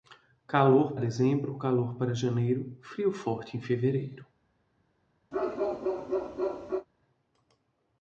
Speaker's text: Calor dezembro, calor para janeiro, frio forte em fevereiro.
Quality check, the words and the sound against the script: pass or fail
fail